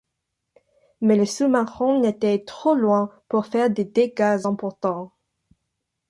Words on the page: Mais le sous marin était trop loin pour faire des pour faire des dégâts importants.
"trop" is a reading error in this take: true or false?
false